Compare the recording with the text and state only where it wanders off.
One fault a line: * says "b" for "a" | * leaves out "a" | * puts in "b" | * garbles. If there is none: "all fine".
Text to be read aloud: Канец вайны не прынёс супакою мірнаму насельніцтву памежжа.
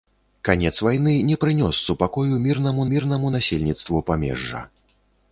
* puts in "мірнаму"